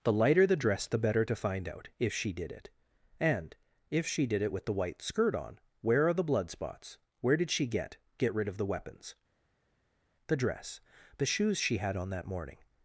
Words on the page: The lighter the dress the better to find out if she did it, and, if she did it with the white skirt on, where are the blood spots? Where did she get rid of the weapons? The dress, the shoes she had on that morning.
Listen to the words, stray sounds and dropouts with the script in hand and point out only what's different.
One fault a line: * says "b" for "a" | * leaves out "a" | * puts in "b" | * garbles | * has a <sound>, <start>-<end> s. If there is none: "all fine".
* puts in "get"